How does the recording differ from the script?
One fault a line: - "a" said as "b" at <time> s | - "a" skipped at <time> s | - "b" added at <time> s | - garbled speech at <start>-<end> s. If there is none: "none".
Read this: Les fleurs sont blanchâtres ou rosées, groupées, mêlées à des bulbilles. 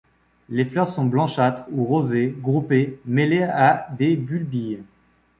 none